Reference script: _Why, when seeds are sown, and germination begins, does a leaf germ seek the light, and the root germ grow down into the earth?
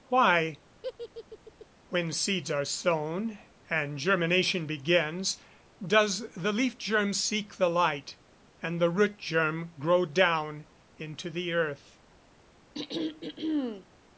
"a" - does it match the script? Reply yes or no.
no